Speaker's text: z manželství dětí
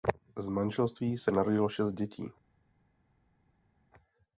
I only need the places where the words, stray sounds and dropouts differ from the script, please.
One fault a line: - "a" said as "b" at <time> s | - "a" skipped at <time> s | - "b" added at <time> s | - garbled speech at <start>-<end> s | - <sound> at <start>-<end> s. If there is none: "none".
- "se narodilo šest" added at 1.1 s